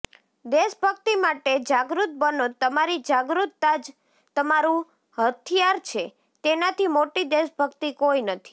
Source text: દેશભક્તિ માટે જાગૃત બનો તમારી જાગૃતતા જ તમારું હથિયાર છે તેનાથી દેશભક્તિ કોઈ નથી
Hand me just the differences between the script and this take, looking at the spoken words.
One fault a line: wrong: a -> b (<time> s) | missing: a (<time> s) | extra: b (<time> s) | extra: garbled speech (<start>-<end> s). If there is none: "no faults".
extra: મોટી (6.9 s)